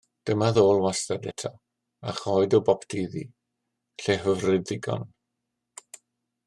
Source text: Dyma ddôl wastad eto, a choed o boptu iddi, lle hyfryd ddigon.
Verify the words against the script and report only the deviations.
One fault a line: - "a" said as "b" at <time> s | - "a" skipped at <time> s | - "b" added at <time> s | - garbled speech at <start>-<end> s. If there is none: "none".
none